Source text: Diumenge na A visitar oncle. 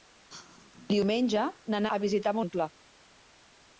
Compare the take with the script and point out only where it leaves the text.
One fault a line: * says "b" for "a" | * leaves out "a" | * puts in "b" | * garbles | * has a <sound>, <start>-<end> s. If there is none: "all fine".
all fine